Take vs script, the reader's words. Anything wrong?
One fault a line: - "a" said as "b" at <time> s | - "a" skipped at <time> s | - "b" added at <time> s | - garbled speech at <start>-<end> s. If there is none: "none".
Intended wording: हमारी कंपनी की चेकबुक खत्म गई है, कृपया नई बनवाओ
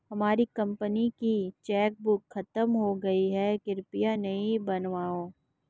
- "हो" added at 2.7 s